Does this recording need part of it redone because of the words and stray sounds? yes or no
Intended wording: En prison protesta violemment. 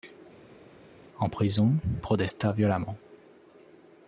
no